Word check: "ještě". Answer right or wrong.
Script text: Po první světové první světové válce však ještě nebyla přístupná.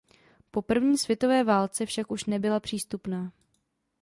wrong